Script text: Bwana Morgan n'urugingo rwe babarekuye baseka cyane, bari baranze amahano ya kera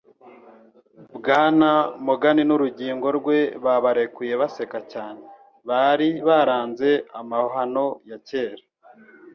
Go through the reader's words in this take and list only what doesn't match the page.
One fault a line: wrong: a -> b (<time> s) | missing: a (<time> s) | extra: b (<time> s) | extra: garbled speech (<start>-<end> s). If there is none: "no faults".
no faults